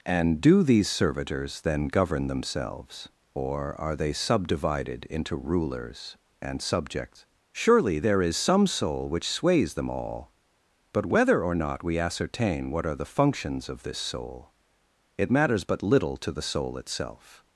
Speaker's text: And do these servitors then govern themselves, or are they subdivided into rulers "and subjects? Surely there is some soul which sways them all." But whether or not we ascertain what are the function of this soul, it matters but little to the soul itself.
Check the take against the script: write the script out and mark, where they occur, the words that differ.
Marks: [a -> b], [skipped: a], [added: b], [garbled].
And do these servitors then govern themselves, or are they subdivided into rulers "and subjects? Surely there is some soul which sways them all." But whether or not we ascertain what are the [function -> functions] of this soul, it matters but little to the soul itself.